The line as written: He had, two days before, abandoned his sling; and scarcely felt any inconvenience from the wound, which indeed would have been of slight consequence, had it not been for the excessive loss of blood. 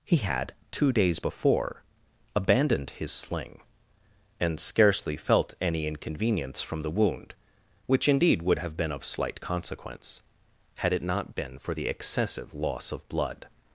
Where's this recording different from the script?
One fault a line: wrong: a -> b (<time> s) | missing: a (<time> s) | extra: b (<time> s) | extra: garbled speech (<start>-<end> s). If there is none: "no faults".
no faults